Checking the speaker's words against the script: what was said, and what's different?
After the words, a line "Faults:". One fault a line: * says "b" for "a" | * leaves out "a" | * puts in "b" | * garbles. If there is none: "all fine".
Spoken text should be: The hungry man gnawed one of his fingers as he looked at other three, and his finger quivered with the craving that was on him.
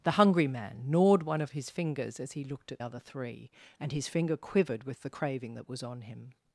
The hungry man gnawed one of his fingers as he looked at other three, and his finger quivered with the craving that was on him.
Faults:
all fine